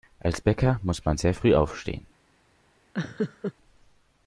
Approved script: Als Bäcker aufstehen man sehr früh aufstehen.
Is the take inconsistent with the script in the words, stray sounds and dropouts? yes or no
yes